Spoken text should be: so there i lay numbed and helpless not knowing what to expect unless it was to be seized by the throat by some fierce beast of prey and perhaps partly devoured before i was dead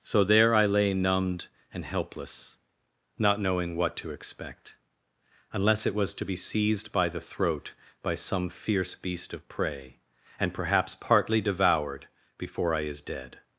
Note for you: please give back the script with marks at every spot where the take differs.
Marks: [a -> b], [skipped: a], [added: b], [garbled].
so there i lay numbed and helpless not knowing what to expect unless it was to be seized by the throat by some fierce beast of prey and perhaps partly devoured before i [was -> is] dead